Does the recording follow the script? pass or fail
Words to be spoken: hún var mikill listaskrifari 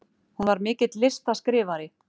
pass